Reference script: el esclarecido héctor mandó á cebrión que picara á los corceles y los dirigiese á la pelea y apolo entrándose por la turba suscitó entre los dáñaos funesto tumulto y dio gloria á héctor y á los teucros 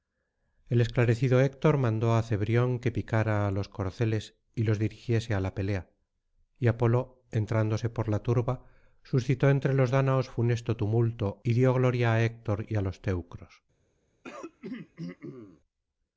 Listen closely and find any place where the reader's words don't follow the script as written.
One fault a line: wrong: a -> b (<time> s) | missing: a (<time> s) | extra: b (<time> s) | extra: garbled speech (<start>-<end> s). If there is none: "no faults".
no faults